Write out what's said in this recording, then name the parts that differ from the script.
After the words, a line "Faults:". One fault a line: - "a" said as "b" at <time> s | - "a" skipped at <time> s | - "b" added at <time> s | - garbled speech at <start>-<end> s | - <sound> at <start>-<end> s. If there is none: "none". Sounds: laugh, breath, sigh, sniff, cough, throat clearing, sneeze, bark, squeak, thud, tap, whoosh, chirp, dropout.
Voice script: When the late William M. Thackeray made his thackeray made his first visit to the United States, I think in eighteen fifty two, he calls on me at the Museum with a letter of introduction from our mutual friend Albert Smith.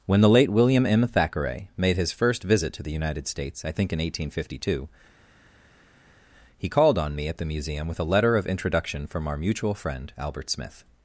When the late William M. Thackeray made his first visit to the United States, I think in eighteen fifty two, he called on me at the Museum with a letter of introduction from our mutual friend Albert Smith.
Faults:
- "thackeray made his" skipped at 2.1 s
- "calls" said as "called" at 6.7 s